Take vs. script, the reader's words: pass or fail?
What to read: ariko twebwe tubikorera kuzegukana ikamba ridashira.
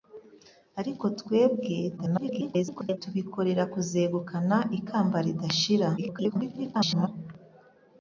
fail